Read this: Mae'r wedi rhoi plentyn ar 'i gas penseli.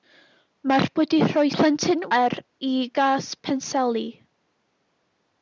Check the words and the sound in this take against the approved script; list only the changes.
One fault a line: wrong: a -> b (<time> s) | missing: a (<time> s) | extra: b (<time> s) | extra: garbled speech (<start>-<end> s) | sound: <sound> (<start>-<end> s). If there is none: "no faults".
no faults